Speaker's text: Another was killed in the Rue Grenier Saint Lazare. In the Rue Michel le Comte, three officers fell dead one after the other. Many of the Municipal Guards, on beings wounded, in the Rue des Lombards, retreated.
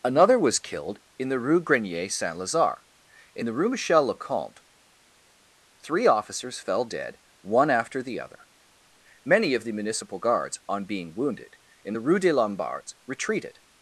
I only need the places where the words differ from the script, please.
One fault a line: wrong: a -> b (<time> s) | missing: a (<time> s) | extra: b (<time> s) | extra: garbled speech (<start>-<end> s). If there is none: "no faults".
wrong: beings -> being (10.9 s)